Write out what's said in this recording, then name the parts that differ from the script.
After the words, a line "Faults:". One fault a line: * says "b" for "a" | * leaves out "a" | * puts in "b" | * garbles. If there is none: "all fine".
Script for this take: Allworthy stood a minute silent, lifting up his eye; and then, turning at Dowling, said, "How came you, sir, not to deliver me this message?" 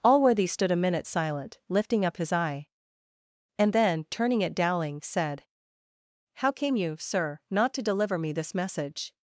Allworthy stood a minute silent, lifting up his eye; and then, turning at Dowling, said, "How came you, sir, not to deliver me this message?"
Faults:
all fine